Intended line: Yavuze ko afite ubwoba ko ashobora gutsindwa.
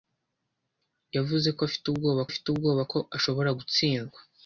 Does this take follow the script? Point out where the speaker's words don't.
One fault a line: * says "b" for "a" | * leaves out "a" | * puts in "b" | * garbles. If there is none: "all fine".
* puts in "afite ubwoba"